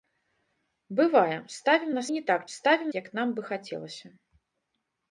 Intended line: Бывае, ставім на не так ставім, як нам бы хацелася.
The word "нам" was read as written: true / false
true